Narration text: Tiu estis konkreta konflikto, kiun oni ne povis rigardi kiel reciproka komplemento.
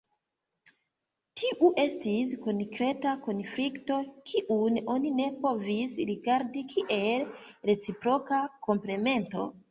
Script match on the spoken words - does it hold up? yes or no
yes